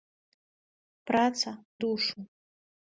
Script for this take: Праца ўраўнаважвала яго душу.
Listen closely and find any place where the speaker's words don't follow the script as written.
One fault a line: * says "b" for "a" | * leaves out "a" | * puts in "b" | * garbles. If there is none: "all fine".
* leaves out "ўраўнаважвала яго"